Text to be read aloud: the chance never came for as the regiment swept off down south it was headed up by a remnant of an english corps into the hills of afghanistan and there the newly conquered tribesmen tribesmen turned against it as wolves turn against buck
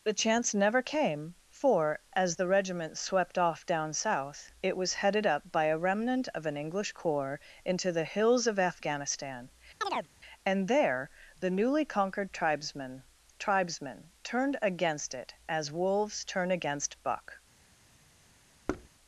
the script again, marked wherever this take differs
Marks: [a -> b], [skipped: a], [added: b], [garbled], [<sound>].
the chance never came for as the regiment swept off down south it was headed up by a remnant of an english corps into the hills of afghanistan [chirp] and there the newly conquered tribesmen tribesmen turned against it as wolves turn against buck [thud]